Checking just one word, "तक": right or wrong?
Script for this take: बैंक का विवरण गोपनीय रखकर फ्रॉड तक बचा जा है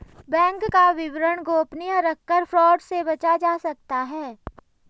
wrong